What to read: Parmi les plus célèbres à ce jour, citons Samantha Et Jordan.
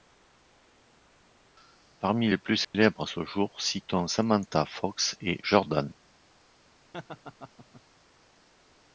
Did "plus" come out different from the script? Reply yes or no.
no